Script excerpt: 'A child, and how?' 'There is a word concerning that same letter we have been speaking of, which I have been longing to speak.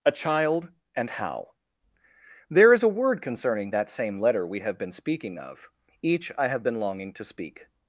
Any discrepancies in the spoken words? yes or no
yes